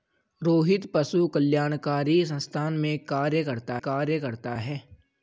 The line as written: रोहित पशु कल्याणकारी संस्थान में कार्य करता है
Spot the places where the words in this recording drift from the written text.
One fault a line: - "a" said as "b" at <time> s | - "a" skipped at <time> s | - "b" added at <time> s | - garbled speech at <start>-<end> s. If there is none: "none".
- "कार्य करता" added at 3.8 s